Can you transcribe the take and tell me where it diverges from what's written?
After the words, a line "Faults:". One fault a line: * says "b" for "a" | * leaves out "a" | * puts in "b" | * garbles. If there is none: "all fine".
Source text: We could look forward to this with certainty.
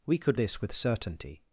We could this with certainty.
Faults:
* leaves out "look forward to"